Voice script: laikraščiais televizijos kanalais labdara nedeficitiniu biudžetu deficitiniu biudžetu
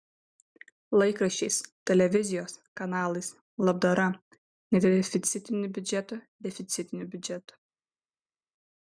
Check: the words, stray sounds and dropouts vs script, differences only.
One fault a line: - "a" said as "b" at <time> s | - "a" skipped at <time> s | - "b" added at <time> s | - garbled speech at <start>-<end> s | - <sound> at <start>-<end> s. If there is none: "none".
none